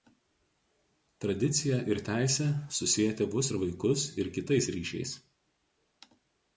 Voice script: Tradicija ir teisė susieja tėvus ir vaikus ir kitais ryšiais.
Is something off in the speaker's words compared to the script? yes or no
no